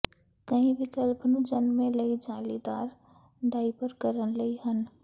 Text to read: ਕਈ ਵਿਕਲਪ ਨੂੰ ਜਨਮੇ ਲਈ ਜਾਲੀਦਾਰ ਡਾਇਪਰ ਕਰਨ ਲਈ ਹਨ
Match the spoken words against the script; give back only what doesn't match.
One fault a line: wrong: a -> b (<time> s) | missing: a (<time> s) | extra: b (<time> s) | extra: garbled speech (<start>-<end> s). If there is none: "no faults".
no faults